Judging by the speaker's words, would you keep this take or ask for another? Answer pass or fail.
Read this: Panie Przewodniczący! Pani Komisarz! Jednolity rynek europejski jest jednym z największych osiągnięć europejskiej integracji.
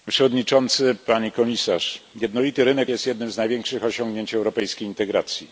fail